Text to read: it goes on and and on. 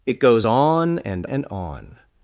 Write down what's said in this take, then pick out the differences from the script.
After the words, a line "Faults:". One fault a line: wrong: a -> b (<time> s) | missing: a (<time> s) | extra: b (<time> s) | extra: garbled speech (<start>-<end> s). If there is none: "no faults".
it goes on and and on.
Faults:
no faults